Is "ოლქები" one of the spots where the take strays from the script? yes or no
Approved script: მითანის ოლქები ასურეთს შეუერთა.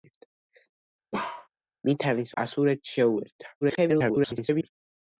yes